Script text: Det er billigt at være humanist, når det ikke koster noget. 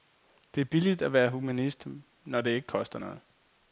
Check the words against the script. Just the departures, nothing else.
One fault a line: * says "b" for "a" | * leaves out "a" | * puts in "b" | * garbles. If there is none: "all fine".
all fine